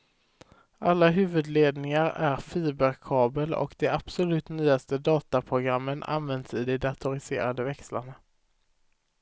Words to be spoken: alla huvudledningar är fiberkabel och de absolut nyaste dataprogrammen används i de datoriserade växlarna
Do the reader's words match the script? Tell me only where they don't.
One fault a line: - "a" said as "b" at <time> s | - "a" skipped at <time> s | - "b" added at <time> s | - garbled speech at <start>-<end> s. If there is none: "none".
none